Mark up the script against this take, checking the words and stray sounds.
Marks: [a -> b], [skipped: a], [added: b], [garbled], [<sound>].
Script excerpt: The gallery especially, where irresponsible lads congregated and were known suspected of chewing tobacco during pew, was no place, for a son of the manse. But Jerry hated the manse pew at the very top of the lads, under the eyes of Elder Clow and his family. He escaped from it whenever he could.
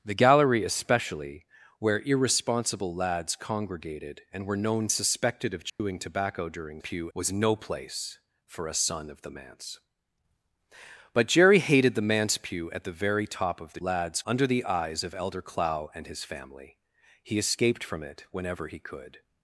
The gallery especially, where irresponsible lads congregated and were known suspected of chewing [dropout] tobacco during pew, was no place, for a son of the manse. But Jerry hated the manse pew at the very top of the lads, under the eyes of Elder Clow and his family. He escaped from it whenever he could.